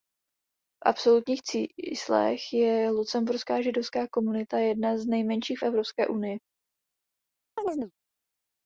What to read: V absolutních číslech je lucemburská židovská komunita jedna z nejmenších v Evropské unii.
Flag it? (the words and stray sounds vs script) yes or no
yes